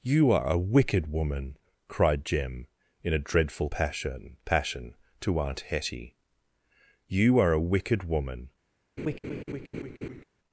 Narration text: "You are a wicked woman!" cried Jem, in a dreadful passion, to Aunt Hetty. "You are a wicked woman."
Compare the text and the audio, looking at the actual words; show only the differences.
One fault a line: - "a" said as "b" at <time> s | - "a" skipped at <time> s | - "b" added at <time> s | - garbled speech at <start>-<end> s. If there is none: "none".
- "passion" added at 4.4 s